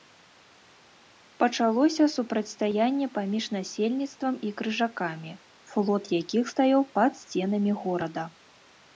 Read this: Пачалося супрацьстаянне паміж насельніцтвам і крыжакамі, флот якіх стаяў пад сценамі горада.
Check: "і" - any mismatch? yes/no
no